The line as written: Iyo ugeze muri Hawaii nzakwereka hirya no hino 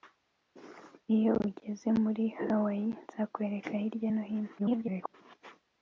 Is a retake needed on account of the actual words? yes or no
yes